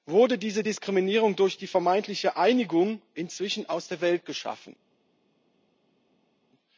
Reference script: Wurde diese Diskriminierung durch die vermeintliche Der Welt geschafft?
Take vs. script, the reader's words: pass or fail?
fail